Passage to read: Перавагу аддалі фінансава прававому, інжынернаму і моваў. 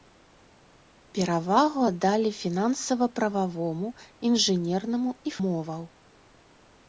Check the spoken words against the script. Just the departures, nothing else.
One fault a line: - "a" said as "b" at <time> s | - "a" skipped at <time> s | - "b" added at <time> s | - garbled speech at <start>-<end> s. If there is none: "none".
none